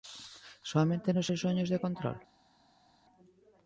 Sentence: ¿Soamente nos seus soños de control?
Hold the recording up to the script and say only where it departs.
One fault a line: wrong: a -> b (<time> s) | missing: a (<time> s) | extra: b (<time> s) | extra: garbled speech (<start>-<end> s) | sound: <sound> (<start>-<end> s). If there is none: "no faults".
no faults